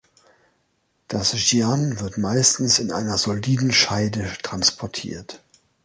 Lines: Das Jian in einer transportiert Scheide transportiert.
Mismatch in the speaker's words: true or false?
true